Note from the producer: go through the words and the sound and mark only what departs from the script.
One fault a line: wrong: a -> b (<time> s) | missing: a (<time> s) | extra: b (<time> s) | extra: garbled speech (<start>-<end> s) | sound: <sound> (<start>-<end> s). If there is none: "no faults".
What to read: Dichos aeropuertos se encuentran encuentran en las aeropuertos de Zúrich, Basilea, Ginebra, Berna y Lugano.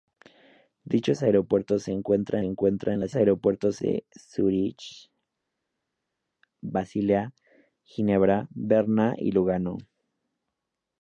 no faults